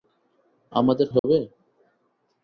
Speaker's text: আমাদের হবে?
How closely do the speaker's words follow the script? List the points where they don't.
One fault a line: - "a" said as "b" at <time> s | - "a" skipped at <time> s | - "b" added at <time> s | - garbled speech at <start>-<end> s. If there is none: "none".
none